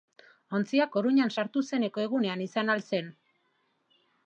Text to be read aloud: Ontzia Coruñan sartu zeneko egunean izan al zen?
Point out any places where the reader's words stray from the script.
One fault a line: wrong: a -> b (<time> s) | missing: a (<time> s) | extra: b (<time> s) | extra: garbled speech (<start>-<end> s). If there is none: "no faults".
no faults